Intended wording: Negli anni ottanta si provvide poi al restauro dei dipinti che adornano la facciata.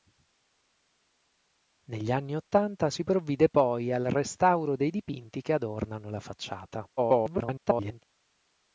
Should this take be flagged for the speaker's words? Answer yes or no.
yes